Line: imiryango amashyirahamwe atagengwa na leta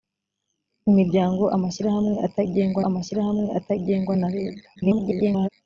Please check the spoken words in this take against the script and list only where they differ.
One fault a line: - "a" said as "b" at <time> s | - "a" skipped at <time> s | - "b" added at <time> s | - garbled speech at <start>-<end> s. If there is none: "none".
- "amashyirahamwe atagengwa" added at 2.9 s
- garbled speech at 4.8-5.5 s